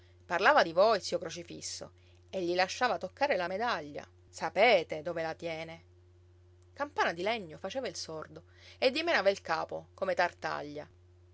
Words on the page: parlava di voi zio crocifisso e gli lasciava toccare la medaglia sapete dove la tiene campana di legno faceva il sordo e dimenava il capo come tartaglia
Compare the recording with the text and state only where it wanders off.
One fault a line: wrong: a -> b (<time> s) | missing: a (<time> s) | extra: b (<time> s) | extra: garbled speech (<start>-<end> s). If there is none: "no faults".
no faults